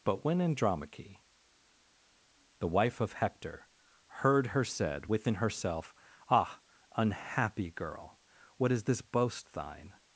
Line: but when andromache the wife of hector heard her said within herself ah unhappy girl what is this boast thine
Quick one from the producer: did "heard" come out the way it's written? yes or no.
yes